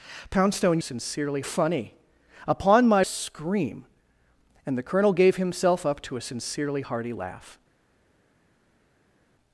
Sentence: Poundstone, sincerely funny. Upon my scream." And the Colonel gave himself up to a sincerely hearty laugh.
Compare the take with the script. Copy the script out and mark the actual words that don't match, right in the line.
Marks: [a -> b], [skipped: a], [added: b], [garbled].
Poundstone, sincerely funny. Upon my scream." And the Colonel gave himself up to a sincerely hearty laugh.